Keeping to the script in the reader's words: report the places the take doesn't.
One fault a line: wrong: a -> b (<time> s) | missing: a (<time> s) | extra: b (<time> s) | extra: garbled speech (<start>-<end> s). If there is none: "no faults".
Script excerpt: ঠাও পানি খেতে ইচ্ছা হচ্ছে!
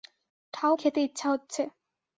missing: পানি (0.7 s)